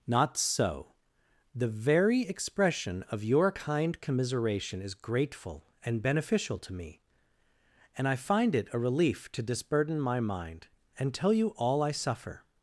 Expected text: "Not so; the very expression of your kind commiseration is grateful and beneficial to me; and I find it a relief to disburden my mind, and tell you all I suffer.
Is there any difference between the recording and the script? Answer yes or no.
no